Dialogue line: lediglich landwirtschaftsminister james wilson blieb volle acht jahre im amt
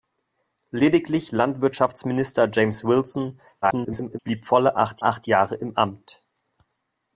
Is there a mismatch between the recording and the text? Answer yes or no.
yes